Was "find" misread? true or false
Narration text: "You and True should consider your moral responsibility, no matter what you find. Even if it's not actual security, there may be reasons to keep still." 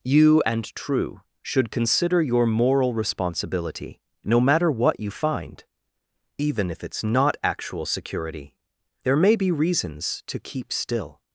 false